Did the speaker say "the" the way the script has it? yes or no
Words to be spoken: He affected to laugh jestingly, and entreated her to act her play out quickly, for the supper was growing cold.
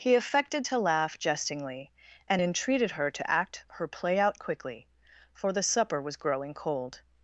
yes